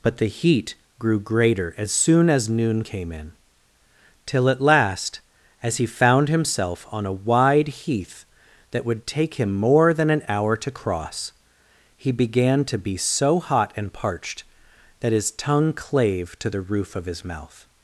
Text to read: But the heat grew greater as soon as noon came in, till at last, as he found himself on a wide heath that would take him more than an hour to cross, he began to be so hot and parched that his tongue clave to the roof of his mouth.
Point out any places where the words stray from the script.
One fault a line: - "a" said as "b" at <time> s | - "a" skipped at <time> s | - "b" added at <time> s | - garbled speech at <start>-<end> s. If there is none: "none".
none